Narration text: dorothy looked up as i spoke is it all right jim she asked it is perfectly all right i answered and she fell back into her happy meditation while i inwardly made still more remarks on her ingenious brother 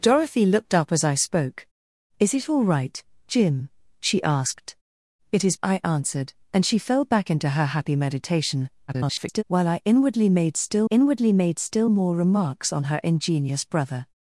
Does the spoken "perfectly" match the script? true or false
false